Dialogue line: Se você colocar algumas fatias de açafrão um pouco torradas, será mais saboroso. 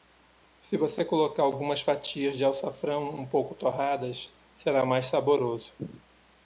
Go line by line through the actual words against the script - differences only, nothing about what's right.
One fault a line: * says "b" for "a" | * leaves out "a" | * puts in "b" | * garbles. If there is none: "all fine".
all fine